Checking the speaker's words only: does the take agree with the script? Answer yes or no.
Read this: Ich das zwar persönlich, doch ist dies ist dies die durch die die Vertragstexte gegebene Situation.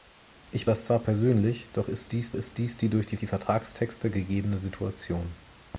yes